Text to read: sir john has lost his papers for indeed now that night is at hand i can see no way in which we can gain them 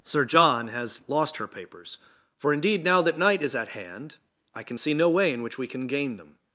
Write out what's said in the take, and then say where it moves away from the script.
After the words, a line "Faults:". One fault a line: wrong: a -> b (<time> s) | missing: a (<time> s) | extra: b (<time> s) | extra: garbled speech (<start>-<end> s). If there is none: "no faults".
sir john has lost her papers for indeed now that night is at hand i can see no way in which we can gain them
Faults:
wrong: his -> her (1.4 s)